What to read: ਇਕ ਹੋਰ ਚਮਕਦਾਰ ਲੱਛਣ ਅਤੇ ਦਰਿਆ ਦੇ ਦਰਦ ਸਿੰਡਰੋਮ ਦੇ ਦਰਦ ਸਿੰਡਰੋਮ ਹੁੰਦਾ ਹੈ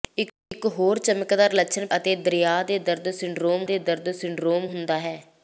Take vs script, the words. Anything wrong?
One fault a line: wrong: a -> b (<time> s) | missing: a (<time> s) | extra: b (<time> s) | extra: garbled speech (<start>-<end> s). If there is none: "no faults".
no faults